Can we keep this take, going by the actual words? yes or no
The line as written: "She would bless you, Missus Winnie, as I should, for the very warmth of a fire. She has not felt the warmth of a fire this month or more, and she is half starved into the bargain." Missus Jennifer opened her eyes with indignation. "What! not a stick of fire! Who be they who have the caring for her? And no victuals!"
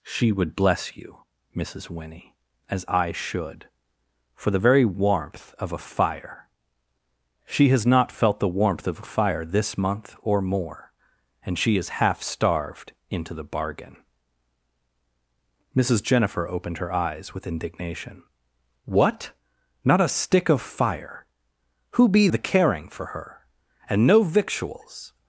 no